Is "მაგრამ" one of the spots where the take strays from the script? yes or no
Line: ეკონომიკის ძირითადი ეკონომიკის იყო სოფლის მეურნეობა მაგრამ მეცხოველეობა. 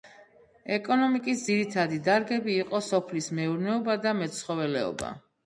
yes